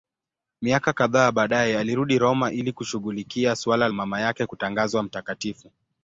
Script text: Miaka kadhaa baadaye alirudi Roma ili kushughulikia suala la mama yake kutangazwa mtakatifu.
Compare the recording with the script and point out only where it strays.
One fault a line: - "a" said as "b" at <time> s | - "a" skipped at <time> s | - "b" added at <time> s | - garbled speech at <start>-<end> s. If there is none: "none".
- "la" skipped at 3.9 s